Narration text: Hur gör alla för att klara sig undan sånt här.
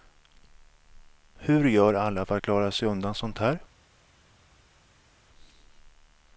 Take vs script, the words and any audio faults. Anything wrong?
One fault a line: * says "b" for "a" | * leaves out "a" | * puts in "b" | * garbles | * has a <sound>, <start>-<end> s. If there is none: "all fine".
all fine